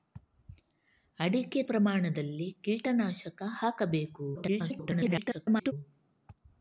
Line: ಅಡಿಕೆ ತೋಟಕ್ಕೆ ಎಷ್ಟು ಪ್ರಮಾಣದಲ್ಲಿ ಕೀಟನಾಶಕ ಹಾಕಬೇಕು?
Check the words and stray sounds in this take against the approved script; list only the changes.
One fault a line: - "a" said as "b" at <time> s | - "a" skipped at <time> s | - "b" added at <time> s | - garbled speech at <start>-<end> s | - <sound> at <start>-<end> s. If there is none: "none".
- "ತೋಟಕ್ಕೆ ಎಷ್ಟು" skipped at 1.6 s
- garbled speech at 4.3-5.7 s